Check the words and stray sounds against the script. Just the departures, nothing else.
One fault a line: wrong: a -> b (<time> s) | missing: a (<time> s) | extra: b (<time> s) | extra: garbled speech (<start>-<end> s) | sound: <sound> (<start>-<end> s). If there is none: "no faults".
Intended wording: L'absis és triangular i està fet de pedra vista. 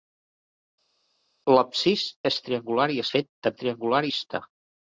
missing: està (3.1 s)
wrong: pedra -> triangular (3.6 s)